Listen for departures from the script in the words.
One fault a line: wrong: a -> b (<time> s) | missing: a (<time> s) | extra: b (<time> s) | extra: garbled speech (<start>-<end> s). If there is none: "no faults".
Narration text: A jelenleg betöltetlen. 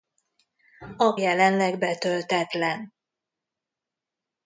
no faults